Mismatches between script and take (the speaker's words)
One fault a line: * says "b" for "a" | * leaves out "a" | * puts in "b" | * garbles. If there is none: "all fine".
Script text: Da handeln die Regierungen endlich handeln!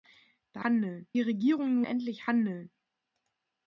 all fine